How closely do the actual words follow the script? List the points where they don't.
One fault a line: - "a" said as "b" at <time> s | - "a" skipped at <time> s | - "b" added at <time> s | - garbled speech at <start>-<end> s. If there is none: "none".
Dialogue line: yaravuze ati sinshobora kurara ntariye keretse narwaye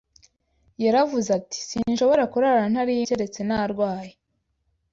none